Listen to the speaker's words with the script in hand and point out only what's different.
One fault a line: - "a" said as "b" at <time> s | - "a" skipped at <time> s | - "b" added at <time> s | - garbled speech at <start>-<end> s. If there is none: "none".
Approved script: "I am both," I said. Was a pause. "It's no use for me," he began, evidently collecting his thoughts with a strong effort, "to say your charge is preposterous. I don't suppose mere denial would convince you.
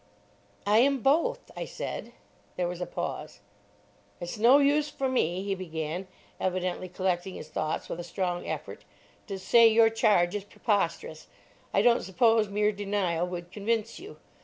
- "There" added at 2.5 s